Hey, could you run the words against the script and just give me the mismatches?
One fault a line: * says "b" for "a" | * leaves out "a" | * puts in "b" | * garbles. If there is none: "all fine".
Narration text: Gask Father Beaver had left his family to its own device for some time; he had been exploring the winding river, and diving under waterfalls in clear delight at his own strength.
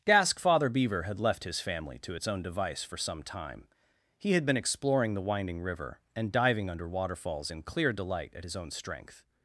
all fine